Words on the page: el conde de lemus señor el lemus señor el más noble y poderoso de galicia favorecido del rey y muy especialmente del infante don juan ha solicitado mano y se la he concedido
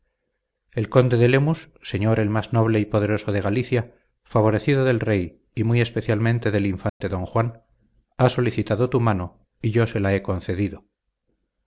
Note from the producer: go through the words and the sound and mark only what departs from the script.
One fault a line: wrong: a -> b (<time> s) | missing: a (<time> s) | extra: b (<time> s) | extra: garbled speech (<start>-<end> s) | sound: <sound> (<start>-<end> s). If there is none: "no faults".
missing: lemus señor el (2.3 s)
sound: dropout (6.9-7.0 s)
extra: tu (8.9 s)
extra: yo (9.7 s)